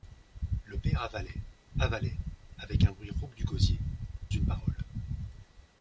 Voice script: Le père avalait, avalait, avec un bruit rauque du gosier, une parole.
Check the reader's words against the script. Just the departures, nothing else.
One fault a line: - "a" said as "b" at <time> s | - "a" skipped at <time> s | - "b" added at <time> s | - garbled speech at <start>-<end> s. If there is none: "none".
none